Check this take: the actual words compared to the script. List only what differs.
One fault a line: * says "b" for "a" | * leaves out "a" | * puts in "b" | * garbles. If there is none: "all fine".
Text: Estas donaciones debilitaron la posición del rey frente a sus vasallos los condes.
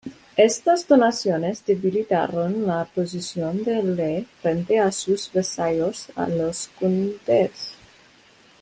all fine